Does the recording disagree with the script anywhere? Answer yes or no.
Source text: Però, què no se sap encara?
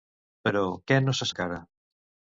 yes